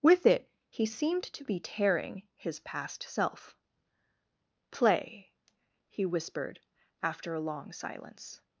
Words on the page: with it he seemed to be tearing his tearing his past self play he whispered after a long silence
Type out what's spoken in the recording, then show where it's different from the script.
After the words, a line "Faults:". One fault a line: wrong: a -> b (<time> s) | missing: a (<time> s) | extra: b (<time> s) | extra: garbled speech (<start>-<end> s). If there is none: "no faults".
with it he seemed to be tearing his past self play he whispered after a long silence
Faults:
missing: tearing his (2.6 s)